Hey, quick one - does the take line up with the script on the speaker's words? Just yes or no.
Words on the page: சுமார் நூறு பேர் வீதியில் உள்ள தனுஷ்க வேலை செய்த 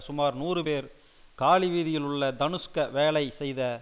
no